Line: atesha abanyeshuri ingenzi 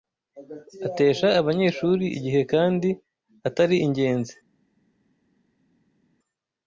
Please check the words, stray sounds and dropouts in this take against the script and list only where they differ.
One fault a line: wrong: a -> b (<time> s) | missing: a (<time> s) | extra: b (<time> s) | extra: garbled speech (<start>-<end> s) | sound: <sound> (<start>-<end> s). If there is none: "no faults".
extra: igihe kandi atari (2.2 s)